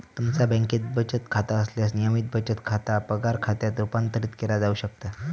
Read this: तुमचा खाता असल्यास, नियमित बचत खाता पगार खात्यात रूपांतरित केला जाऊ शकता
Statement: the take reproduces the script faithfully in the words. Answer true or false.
false